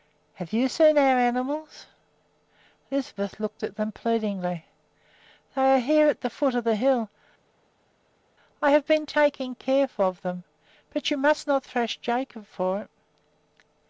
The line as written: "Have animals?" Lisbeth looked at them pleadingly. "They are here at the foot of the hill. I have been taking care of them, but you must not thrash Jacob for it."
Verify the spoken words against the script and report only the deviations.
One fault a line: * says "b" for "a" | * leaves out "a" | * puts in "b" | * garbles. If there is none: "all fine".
* puts in "you seen our"